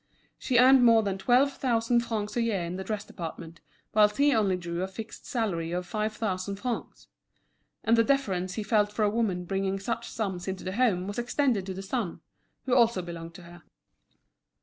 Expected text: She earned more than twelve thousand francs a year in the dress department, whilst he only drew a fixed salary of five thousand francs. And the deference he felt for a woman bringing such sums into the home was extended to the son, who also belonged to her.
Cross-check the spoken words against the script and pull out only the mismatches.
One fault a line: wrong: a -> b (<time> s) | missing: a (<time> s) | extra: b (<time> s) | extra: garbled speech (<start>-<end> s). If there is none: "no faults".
no faults